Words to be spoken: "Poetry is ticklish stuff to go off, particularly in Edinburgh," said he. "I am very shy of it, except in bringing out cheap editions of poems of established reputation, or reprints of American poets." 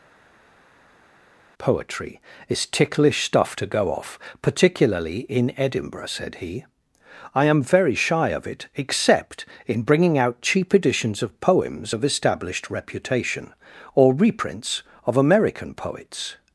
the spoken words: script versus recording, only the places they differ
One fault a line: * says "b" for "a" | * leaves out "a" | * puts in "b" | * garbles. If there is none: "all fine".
all fine